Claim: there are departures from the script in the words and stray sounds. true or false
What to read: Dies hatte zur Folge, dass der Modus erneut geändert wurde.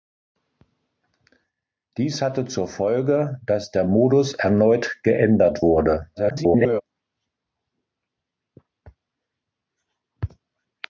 true